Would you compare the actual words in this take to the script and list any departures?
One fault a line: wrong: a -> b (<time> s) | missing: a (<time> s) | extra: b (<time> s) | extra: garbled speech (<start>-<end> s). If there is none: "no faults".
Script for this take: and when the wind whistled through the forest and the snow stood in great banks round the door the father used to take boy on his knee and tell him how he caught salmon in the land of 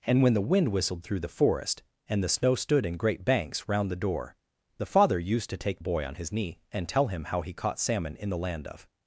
no faults